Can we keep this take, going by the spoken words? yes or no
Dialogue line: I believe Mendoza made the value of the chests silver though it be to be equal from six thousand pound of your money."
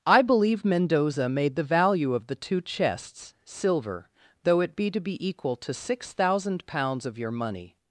no